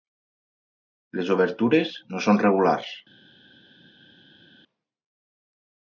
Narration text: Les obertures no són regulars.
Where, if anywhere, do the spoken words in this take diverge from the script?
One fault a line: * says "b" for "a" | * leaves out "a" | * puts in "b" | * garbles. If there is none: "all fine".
all fine